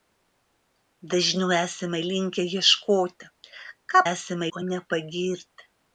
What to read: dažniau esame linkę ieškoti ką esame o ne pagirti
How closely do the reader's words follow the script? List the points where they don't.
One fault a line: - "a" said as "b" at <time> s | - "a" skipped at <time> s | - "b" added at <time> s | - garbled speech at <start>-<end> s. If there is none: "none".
none